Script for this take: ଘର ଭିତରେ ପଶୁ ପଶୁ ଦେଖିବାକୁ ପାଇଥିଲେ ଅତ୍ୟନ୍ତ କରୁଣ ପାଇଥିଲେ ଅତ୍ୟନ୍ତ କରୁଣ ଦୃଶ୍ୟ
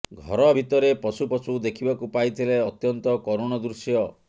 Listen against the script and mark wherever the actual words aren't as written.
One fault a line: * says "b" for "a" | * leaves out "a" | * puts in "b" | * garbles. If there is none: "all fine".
* leaves out "ପାଇଥିଲେ ଅତ୍ୟନ୍ତ କରୁଣ"